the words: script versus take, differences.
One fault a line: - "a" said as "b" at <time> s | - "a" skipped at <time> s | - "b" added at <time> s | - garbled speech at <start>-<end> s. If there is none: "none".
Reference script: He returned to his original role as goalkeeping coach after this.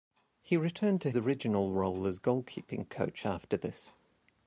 - "his" skipped at 1.1 s